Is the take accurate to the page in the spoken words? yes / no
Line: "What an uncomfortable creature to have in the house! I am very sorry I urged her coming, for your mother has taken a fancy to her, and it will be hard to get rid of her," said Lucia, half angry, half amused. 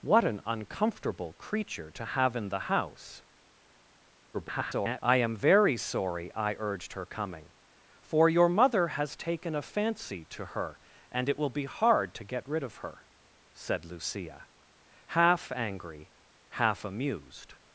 no